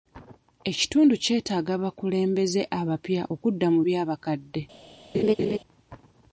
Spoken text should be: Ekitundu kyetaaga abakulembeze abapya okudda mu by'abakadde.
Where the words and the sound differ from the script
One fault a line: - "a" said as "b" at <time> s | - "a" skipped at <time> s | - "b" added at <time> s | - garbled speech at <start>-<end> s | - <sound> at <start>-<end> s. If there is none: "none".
- laugh at 5.1-5.6 s